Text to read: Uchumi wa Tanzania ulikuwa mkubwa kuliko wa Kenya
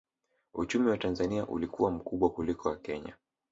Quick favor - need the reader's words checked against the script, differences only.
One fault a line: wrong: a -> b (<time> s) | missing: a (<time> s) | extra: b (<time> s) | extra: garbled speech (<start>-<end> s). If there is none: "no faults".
no faults